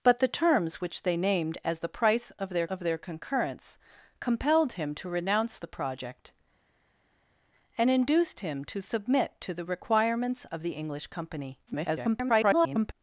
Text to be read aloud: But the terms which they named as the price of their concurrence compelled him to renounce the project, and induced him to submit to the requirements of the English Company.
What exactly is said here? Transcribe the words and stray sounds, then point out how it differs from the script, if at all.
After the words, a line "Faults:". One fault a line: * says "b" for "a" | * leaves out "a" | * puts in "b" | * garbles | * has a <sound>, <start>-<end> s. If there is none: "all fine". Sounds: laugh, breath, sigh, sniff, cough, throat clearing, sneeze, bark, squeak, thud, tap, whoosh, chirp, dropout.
But the terms which they named as the price of their of their concurrence compelled him to renounce the project, and induced him to submit to the requirements of the English Company. [garbled]
Faults:
* puts in "of their"
* garbles